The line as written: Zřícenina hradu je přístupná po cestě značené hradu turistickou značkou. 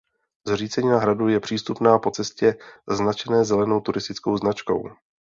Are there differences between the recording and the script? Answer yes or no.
yes